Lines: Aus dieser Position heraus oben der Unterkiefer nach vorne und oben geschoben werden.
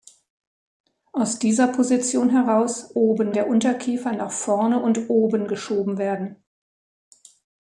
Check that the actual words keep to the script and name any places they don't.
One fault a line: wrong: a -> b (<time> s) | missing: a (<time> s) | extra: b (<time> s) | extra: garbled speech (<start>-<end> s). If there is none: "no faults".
no faults